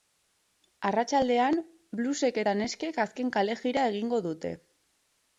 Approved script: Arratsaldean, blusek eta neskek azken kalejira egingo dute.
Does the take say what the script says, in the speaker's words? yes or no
yes